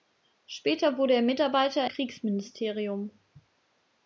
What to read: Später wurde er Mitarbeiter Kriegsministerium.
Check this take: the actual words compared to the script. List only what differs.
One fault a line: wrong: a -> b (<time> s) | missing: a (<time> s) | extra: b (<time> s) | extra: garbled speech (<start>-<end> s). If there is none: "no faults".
no faults